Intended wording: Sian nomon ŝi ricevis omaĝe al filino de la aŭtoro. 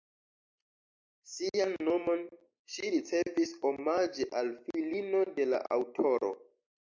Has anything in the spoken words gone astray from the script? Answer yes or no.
no